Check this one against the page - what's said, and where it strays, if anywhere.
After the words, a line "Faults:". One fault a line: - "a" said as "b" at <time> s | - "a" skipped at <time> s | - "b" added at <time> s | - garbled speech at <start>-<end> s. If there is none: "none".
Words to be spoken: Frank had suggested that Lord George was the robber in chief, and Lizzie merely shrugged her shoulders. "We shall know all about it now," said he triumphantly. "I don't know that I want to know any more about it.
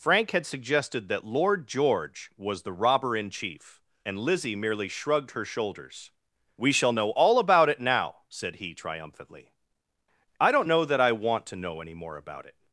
Frank had suggested that Lord George was the robber in chief, and Lizzie merely shrugged her shoulders. "We shall know all about it now," said he triumphantly. "I don't know that I want to know any more about it.
Faults:
none